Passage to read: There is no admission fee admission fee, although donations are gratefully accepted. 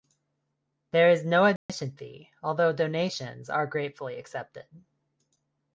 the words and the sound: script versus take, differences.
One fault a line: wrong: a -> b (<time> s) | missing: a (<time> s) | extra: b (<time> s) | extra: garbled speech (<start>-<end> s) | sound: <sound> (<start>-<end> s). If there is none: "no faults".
sound: dropout (1.6-1.7 s)
missing: admission fee (2.3 s)